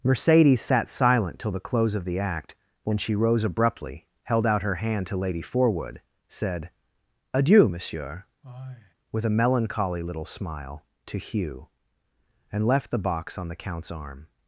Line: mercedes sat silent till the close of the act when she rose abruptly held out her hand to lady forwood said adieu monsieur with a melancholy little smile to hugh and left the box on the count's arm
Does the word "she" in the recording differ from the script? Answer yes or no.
no